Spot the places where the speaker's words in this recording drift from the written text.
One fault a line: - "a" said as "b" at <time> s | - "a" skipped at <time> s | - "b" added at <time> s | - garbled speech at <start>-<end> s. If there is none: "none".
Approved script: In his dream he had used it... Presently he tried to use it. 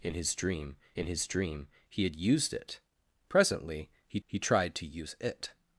- "in his dream" added at 0.9 s
- "he" added at 4.3 s